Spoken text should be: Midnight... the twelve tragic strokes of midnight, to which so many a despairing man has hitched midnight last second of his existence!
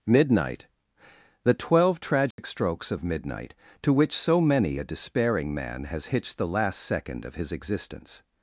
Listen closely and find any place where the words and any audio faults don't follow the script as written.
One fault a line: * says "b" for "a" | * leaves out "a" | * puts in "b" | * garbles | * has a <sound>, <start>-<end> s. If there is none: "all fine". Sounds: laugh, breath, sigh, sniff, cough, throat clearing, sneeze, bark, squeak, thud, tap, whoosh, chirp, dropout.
* has a dropout, 2.3-2.4 s
* says "the" for "midnight"